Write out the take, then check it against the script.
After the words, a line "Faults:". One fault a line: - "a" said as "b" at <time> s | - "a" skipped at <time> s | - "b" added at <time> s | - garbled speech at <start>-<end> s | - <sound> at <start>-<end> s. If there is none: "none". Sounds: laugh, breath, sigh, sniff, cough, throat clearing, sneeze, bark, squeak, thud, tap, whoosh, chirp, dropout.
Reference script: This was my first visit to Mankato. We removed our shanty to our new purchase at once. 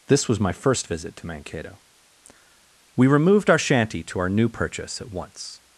This was my first visit to Mankato. We removed our shanty to our new purchase at once.
Faults:
none